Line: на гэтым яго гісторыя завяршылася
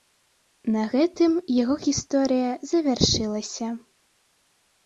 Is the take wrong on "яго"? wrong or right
right